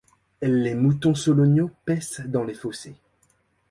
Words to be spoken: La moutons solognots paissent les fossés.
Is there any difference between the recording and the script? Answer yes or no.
yes